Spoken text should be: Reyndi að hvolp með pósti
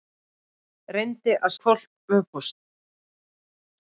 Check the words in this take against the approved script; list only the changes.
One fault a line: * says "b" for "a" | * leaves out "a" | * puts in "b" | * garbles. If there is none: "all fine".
all fine